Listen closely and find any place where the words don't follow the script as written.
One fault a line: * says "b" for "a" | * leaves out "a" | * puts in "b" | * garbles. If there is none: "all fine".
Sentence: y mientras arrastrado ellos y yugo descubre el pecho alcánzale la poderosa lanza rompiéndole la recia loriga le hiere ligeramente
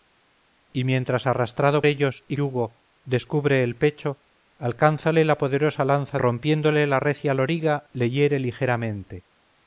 all fine